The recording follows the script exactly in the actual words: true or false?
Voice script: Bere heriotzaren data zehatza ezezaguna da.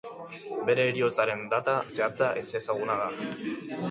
true